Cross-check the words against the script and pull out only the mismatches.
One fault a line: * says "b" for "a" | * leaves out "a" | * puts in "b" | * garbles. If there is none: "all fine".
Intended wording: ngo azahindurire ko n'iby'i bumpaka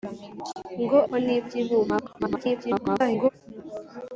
* leaves out "azahindurire"
* garbles